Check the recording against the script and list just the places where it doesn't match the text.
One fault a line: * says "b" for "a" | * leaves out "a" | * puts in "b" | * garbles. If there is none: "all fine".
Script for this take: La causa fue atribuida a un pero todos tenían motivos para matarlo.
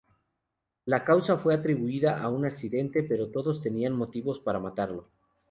* puts in "accidente"